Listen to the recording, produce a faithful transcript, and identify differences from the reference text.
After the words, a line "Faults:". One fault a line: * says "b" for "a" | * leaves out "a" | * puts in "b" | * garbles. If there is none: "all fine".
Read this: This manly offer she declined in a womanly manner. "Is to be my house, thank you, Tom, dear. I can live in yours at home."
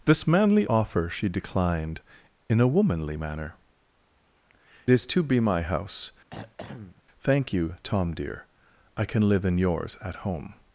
This manly offer she declined in a womanly manner. "Is to be my house, thank you, Tom, dear. I can live in yours at home."
Faults:
all fine